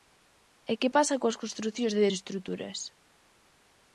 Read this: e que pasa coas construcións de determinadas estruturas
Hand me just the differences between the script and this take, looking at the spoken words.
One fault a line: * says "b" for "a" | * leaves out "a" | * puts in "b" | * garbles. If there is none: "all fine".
* leaves out "determinadas"